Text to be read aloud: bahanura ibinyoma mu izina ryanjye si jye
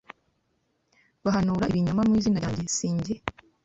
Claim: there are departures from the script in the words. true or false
false